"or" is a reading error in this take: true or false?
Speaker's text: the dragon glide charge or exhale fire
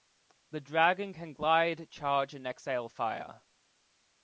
true